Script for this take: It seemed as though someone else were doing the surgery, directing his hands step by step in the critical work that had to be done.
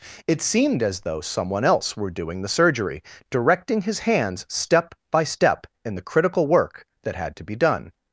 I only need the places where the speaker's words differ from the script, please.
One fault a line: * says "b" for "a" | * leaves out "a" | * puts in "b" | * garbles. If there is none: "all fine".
all fine